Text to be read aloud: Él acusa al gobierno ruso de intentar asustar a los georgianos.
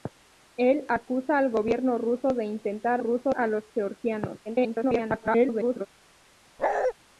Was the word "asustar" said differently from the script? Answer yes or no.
yes